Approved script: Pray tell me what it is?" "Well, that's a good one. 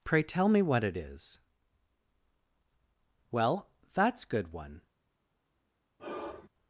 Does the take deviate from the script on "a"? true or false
true